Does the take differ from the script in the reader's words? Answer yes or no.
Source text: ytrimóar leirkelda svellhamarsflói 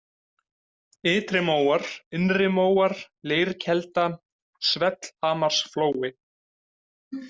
yes